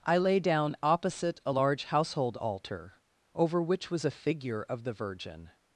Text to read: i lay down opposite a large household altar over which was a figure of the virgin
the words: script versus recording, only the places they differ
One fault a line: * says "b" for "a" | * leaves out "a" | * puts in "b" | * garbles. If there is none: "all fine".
all fine